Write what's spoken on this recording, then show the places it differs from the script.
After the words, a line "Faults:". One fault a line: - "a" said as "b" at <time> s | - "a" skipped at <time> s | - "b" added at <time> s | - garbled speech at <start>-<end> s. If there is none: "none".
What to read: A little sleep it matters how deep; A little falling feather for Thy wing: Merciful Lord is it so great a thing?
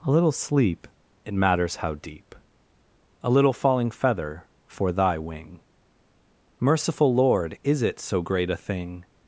A little sleep it matters how deep; A little falling feather for Thy wing: Merciful Lord is it so great a thing?
Faults:
none